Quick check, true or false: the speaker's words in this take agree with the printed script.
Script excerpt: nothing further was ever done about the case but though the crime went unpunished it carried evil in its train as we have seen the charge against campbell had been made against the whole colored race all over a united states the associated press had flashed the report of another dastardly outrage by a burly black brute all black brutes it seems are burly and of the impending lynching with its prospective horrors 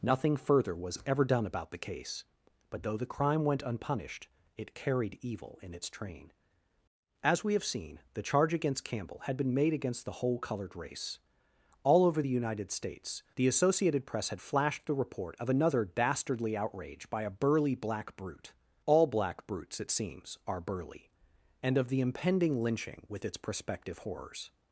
false